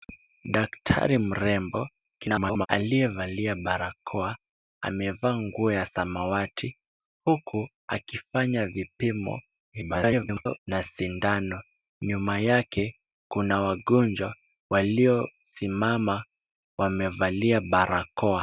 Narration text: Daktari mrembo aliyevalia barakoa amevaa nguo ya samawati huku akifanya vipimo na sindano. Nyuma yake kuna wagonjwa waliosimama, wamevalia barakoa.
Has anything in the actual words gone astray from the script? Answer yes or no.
yes